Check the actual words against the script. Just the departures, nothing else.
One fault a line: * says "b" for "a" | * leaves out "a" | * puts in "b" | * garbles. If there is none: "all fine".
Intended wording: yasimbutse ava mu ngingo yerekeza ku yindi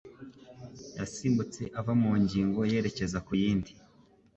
all fine